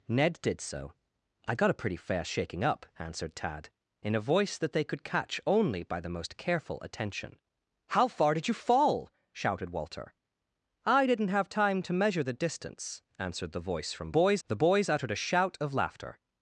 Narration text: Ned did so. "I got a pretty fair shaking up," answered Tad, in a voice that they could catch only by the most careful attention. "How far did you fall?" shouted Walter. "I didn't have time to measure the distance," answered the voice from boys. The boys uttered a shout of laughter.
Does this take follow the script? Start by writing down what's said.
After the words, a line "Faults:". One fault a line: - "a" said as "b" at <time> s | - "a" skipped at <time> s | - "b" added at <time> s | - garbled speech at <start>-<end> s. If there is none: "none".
Ned did so. "I got a pretty fair shaking up," answered Tad, in a voice that they could catch only by the most careful attention. "How far did you fall?" shouted Walter. "I didn't have time to measure the distance," answered the voice from boys. The boys uttered a shout of laughter.
Faults:
none